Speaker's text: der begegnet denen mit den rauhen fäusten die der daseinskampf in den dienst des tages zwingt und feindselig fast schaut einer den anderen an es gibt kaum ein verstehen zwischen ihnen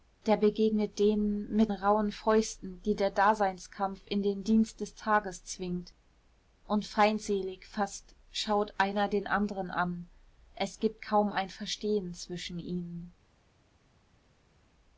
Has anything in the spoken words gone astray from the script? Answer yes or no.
yes